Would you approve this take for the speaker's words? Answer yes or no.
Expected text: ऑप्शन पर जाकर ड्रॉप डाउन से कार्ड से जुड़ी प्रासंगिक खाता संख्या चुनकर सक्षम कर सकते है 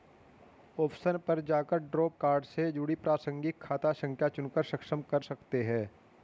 no